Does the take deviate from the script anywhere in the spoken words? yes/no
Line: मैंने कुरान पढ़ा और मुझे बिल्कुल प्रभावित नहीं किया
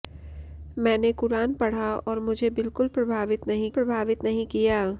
yes